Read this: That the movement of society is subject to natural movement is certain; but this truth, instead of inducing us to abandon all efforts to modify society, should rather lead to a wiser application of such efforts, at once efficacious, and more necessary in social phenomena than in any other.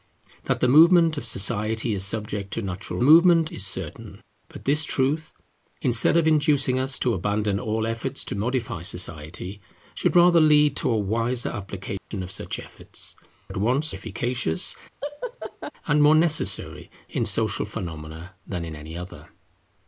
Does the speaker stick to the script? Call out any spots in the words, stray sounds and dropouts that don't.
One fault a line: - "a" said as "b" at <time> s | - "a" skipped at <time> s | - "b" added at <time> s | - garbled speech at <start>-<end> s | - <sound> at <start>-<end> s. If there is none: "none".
- dropout at 12.0-12.1 s
- laugh at 15.0-15.7 s